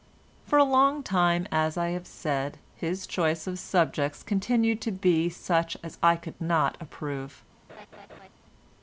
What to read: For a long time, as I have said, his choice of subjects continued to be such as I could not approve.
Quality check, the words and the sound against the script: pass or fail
fail